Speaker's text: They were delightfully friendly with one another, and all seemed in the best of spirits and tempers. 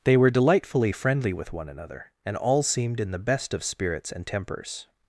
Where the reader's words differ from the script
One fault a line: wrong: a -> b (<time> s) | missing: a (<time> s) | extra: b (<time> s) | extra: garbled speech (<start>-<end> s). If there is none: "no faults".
no faults